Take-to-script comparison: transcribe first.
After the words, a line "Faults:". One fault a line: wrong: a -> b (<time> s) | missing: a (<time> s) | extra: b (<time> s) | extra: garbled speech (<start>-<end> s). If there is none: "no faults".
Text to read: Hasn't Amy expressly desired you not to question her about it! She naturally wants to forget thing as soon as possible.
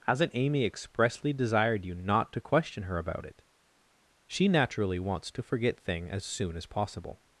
Hasn't Amy expressly desired you not to question her about it! She naturally wants to forget thing as soon as possible.
Faults:
no faults